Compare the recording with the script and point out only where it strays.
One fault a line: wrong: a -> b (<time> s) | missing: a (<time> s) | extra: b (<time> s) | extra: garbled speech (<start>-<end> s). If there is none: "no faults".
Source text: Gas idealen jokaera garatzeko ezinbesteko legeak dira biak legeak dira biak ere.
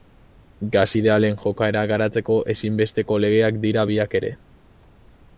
missing: legeak dira biak (4.1 s)